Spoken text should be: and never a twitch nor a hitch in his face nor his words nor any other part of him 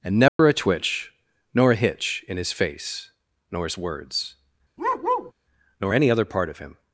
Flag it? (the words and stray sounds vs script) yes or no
yes